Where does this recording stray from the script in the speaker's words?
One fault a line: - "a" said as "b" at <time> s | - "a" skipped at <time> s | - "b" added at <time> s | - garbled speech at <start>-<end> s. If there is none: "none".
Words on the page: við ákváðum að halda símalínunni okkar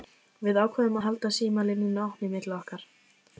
- "opinni milli" added at 2.1 s